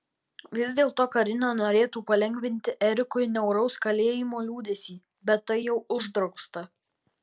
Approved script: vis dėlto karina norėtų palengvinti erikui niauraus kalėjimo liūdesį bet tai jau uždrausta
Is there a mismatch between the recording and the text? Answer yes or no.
no